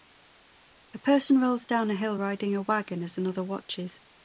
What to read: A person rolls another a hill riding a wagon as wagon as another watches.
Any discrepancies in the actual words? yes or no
yes